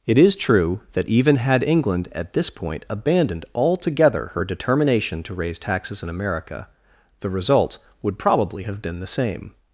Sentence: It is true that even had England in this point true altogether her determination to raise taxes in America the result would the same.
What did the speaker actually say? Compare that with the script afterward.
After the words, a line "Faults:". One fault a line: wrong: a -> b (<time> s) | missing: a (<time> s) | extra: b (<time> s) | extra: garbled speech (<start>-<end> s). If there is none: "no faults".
It is true that even had England at this point abandoned altogether her determination to raise taxes in America the result would probably have been the same.
Faults:
wrong: in -> at (2.1 s)
wrong: true -> abandoned (2.9 s)
extra: probably have been (8.2 s)